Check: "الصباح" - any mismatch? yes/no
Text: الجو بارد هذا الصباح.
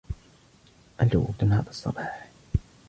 no